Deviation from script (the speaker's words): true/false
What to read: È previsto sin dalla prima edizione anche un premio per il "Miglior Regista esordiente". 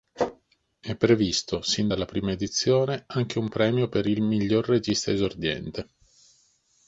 false